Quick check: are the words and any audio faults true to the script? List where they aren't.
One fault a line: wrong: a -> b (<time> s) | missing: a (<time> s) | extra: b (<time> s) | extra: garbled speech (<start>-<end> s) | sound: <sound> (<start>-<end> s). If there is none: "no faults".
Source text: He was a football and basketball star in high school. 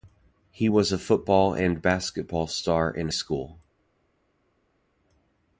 missing: high (3.1 s)